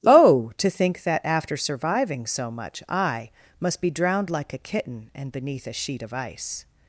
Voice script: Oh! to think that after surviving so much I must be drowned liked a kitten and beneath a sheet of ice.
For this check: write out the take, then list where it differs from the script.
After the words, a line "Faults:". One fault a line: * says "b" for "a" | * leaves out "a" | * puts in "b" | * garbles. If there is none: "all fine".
Oh! to think that after surviving so much I must be drowned like a kitten and beneath a sheet of ice.
Faults:
* says "like" for "liked"